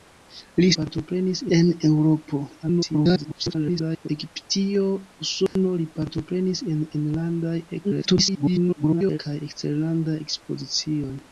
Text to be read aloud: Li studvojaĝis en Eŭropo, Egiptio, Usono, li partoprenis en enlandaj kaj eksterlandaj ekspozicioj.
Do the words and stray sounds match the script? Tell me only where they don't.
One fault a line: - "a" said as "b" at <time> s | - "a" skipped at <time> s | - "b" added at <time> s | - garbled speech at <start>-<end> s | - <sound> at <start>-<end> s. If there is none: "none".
- "studvojaĝis" said as "partoprenis" at 0.8 s
- garbled speech at 2.6-4.1 s
- dropout at 5.5-5.6 s
- garbled speech at 7.8-9.2 s